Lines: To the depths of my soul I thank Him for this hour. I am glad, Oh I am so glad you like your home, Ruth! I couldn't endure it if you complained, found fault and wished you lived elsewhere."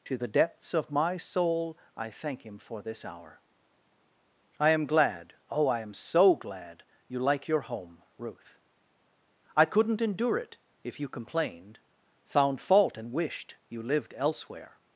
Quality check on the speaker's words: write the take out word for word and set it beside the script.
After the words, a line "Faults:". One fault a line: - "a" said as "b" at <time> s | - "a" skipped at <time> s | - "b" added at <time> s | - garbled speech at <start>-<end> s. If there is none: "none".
To the depths of my soul I thank Him for this hour. I am glad, Oh I am so glad you like your home, Ruth! I couldn't endure it if you complained, found fault and wished you lived elsewhere."
Faults:
none